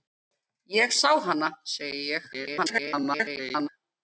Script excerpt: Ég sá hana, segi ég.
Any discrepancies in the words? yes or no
yes